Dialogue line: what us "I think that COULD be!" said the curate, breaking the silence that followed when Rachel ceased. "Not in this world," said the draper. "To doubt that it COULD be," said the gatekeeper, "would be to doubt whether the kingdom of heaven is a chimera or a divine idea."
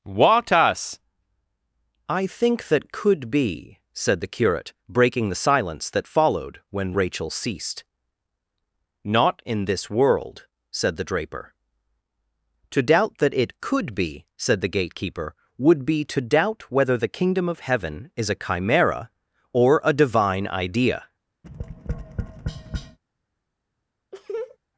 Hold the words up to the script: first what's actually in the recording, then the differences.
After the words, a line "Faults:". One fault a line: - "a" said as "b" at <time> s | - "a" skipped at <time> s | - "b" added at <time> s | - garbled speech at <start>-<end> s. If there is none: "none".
what us "I think that COULD be!" said the curate, breaking the silence that followed when Rachel ceased. "Not in this world," said the draper. "To doubt that it COULD be," said the gatekeeper, "would be to doubt whether the kingdom of heaven is a chimera or a divine idea."
Faults:
none